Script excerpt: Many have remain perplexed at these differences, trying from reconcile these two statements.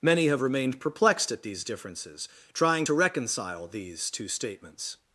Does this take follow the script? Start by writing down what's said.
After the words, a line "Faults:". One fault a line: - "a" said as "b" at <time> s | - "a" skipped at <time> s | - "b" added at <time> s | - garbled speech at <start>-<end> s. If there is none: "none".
Many have remained perplexed at these differences, trying to reconcile these two statements.
Faults:
- "remain" said as "remained" at 0.4 s
- "from" said as "to" at 2.8 s